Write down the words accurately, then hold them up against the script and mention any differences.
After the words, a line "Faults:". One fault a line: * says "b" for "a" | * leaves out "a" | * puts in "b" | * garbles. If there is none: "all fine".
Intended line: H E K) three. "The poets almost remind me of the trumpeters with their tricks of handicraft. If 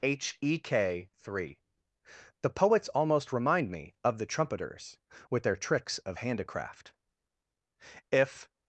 H E K) three. "The poets almost remind me of the trumpeters with their tricks of handicraft. If
Faults:
all fine